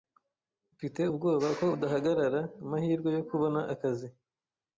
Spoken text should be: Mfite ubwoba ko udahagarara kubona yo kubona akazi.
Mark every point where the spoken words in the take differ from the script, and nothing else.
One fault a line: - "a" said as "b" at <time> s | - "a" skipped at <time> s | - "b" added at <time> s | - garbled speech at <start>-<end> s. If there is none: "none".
- "kubona" said as "amahirwe" at 2.6 s